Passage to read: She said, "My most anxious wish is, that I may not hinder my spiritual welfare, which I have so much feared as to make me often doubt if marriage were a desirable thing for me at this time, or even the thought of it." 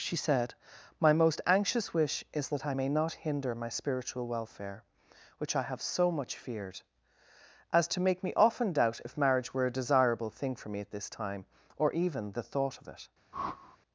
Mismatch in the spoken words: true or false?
false